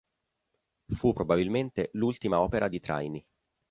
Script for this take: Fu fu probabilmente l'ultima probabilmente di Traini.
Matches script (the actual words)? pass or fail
fail